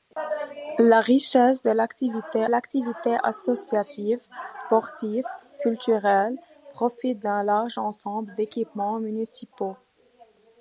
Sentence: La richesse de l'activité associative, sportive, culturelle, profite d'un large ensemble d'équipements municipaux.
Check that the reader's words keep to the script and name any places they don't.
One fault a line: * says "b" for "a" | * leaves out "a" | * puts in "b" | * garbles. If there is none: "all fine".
* puts in "l'activité"